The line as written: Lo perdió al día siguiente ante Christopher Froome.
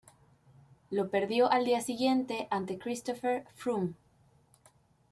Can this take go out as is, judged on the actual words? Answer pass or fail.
pass